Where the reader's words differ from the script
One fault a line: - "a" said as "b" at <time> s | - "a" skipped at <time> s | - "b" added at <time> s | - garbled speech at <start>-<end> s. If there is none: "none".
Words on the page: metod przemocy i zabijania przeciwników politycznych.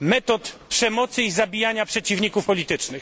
none